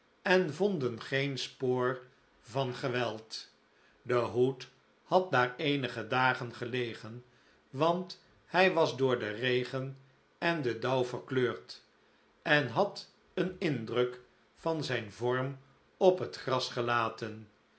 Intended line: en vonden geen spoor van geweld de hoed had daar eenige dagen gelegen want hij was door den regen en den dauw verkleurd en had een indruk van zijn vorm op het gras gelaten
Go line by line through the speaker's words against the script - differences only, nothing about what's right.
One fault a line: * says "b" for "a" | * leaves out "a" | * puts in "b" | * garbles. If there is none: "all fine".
all fine